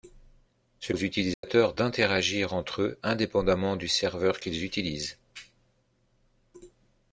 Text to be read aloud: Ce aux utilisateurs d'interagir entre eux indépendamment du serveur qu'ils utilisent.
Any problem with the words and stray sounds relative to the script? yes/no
yes